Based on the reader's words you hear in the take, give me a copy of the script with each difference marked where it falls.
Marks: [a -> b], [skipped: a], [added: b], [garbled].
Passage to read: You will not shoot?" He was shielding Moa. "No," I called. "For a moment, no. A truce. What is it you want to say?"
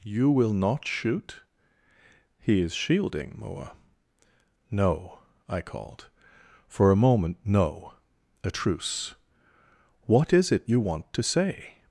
You will not shoot?" He [was -> is] shielding Moa. "No," I called. "For a moment, no. A truce. What is it you want to say?"